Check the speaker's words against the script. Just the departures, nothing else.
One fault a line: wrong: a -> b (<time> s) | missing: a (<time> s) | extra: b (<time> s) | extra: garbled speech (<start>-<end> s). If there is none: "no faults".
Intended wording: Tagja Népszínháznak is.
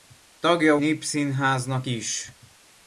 no faults